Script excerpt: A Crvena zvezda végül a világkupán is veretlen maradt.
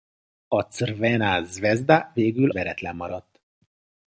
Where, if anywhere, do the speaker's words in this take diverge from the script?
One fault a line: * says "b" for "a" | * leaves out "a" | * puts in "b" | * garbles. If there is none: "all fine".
* leaves out "a világkupán is"